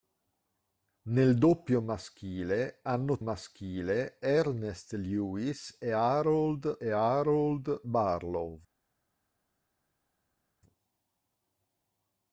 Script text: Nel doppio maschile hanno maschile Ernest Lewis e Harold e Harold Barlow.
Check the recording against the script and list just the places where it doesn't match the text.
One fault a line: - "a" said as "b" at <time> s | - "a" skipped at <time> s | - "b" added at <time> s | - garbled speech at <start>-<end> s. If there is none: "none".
none